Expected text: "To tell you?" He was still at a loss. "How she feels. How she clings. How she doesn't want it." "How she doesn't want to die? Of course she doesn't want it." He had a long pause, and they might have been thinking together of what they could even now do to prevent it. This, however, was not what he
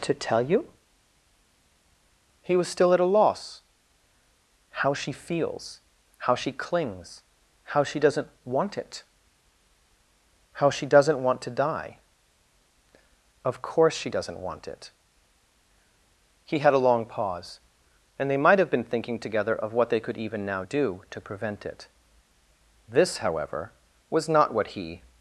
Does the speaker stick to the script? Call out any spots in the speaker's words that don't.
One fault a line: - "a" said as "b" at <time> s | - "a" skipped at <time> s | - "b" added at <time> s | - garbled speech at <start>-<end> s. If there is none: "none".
none